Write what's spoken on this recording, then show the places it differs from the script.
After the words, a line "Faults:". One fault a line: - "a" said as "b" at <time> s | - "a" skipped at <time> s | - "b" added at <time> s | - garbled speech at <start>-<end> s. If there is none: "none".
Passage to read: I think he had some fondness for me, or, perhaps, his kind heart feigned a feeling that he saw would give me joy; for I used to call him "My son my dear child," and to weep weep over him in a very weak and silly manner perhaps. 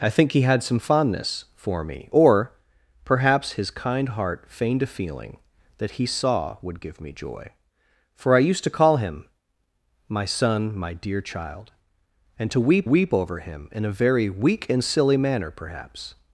I think he had some fondness for me, or, perhaps, his kind heart feigned a feeling that he saw would give me joy; for I used to call him "My son my dear child," and to weep weep over him in a very weak and silly manner perhaps.
Faults:
none